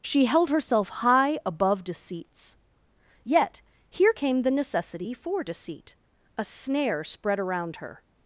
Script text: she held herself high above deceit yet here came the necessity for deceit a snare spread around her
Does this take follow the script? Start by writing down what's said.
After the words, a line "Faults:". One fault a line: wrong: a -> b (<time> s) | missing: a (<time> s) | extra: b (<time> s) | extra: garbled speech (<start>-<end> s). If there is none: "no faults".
she held herself high above deceits yet here came the necessity for deceit a snare spread around her
Faults:
wrong: deceit -> deceits (1.8 s)